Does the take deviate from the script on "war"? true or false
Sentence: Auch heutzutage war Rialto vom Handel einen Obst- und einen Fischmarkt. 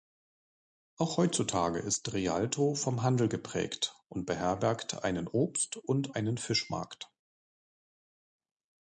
true